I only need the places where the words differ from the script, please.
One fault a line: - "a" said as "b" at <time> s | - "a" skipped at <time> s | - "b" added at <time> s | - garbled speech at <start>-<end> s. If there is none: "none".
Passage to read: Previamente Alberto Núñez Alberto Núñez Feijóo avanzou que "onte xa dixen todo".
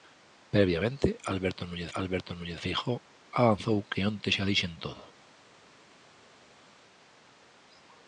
none